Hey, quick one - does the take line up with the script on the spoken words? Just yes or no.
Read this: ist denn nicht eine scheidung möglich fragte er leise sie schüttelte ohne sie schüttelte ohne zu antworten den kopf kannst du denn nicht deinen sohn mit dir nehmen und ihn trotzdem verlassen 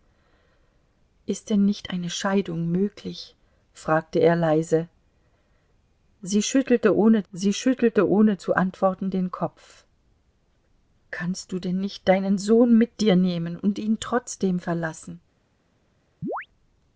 yes